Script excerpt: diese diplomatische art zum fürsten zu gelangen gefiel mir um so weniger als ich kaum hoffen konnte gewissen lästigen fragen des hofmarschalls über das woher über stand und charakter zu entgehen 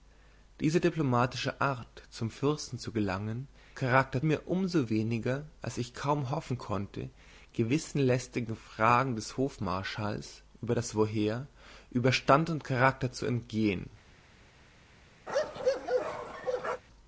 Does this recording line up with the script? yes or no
no